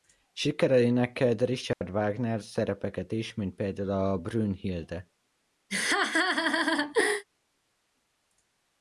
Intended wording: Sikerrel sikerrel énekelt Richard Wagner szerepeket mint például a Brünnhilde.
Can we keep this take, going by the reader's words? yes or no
no